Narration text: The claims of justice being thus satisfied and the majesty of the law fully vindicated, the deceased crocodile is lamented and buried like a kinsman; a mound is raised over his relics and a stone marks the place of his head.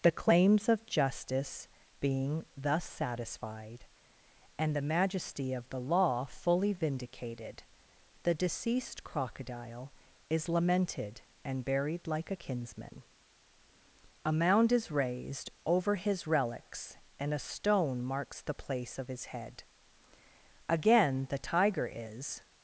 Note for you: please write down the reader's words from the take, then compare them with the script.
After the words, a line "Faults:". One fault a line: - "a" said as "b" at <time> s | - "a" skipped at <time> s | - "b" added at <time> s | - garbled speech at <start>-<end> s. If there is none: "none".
The claims of justice being thus satisfied and the majesty of the law fully vindicated, the deceased crocodile is lamented and buried like a kinsman; a mound is raised over his relics and a stone marks the place of his head. Again, the tiger is
Faults:
- "Again the tiger is" added at 20.7 s